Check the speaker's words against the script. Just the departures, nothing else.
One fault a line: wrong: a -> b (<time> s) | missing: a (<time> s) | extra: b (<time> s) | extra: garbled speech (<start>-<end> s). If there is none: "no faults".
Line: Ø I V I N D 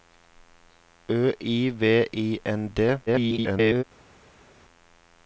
extra: garbled speech (3.1-3.8 s)